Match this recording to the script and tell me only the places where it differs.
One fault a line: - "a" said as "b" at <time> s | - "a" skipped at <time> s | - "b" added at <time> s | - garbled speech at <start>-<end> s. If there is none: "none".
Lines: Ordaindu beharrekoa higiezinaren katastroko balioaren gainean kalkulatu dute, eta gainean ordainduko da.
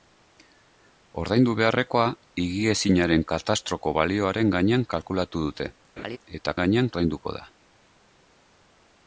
none